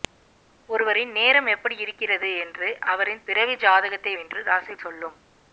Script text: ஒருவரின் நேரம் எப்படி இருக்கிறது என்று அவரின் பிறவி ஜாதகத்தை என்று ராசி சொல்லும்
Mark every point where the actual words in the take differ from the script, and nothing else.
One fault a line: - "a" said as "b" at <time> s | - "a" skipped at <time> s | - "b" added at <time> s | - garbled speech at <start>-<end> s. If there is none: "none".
none